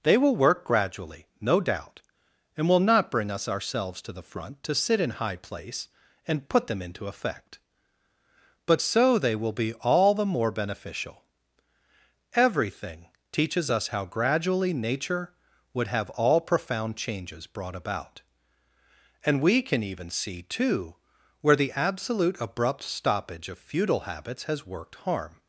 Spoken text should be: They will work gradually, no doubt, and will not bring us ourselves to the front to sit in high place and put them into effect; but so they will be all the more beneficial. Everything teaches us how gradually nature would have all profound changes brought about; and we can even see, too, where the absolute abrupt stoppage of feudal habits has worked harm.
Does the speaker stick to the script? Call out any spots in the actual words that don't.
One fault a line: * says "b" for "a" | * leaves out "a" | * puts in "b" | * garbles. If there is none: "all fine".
all fine